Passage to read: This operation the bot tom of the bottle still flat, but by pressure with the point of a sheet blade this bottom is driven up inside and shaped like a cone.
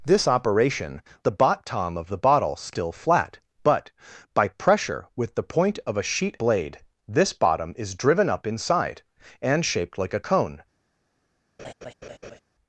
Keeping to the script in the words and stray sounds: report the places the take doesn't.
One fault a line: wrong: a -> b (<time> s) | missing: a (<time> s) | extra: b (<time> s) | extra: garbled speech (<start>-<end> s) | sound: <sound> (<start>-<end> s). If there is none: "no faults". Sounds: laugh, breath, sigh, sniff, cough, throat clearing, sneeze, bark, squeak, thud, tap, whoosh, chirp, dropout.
sound: laugh (11.6-12.4 s)